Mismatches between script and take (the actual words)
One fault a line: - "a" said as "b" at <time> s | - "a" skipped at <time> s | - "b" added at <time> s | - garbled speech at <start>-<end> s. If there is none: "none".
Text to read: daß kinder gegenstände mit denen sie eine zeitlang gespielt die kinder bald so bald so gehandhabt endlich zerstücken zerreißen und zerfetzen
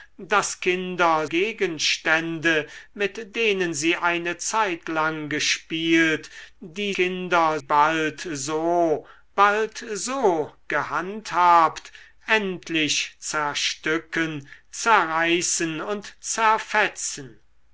none